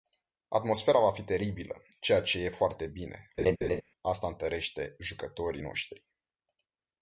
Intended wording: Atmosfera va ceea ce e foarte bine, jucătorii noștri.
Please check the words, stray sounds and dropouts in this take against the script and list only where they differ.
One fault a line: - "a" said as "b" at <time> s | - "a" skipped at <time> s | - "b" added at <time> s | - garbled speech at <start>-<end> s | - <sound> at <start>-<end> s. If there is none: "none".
- "fi teribilă" added at 1.1 s
- laugh at 3.4-3.8 s
- "asta întărește" added at 4.0 s